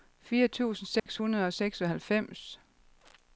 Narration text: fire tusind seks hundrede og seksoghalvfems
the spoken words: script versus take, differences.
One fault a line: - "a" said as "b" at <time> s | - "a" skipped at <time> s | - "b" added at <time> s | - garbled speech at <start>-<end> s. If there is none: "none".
none